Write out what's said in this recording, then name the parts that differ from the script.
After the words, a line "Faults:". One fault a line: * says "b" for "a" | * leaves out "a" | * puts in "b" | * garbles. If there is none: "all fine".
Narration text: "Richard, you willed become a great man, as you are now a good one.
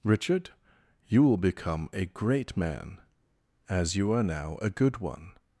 "Richard, you will become a great man, as you are now a good one.
Faults:
* says "will" for "willed"